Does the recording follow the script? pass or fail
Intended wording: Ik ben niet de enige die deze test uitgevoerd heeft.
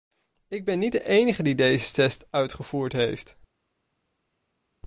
pass